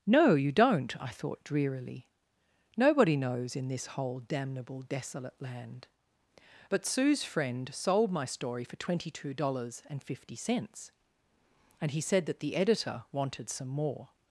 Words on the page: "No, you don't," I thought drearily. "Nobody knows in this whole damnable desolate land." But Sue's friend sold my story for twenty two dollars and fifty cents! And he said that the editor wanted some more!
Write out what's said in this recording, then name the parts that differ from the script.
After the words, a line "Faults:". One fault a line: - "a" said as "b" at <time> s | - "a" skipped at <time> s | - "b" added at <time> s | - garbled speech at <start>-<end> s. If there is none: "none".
"No, you don't," I thought drearily. "Nobody knows in this whole damnable desolate land." But Sue's friend sold my story for twenty two dollars and fifty cents! And he said that the editor wanted some more!
Faults:
none